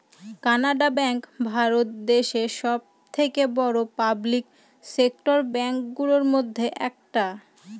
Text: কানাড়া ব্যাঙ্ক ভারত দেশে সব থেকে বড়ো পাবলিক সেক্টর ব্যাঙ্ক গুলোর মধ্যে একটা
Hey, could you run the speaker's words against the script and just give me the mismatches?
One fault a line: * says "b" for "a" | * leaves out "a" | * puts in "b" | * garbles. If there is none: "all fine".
all fine